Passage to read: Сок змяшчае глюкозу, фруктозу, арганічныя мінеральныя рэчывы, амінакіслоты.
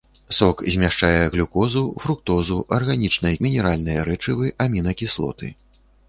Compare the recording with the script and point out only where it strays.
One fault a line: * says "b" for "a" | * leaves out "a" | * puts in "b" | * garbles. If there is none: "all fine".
all fine